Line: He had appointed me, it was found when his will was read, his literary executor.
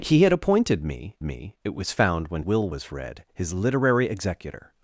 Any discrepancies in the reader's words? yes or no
yes